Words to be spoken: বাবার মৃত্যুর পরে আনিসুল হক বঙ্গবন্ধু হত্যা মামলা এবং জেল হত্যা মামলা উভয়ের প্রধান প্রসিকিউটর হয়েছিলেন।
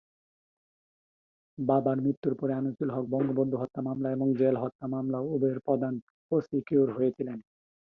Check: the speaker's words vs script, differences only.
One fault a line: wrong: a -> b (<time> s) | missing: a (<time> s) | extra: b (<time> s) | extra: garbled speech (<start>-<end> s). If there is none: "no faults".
no faults